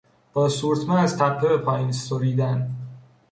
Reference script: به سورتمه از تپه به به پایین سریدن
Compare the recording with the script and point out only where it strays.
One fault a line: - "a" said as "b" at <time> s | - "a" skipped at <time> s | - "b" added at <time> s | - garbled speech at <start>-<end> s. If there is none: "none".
- "به" said as "با" at 0.3 s
- "به" skipped at 1.6 s